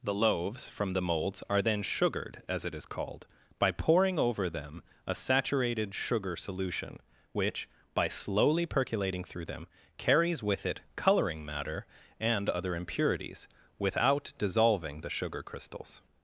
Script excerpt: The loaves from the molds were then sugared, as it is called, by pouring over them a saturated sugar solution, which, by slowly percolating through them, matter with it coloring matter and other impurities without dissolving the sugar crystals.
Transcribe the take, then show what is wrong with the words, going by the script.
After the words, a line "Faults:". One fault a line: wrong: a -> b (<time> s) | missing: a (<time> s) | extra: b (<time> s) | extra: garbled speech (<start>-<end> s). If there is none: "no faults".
The loaves from the molds are then sugared, as it is called, by pouring over them a saturated sugar solution, which, by slowly percolating through them, carries with it coloring matter and other impurities without dissolving the sugar crystals.
Faults:
wrong: were -> are (1.5 s)
wrong: matter -> carries (10.0 s)